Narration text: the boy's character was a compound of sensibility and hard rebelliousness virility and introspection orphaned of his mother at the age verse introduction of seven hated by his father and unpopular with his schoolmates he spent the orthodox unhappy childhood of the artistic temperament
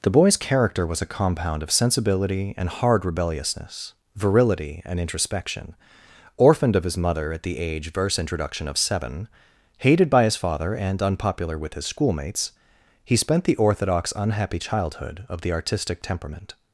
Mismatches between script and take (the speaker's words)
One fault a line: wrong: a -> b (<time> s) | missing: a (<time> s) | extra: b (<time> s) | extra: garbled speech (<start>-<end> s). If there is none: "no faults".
no faults